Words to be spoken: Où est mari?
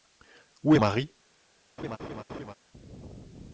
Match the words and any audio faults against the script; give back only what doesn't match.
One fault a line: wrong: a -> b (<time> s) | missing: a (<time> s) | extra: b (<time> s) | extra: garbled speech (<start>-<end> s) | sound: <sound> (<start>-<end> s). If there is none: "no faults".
sound: laugh (1.8-2.5 s)